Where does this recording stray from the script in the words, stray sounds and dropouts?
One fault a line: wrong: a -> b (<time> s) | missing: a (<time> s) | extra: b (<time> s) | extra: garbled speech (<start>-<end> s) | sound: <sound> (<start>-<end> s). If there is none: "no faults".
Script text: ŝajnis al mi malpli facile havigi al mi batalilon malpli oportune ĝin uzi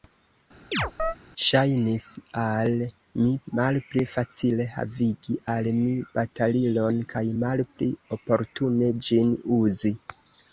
sound: chirp (0.7-1.2 s)
extra: kaj (7.1 s)